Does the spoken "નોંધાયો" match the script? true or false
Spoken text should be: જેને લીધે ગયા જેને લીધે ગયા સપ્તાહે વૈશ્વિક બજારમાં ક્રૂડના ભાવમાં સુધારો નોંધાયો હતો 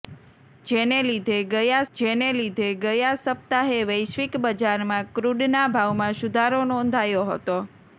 true